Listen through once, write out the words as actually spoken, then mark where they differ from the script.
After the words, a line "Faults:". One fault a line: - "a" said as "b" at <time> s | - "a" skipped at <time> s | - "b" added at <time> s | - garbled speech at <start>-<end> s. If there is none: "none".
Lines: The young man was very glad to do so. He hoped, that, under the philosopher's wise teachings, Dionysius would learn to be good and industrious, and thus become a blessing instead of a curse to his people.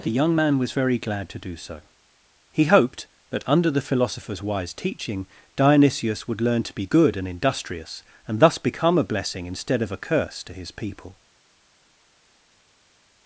The young man was very glad to do so. He hoped, that, under the philosopher's wise teaching, Dionysius would learn to be good and industrious, and thus become a blessing instead of a curse to his people.
Faults:
- "teachings" said as "teaching" at 4.7 s